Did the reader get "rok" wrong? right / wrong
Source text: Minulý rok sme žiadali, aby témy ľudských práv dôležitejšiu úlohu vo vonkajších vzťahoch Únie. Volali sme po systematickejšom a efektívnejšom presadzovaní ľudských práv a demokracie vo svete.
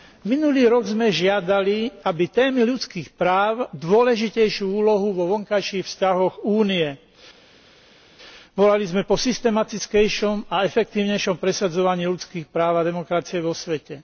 right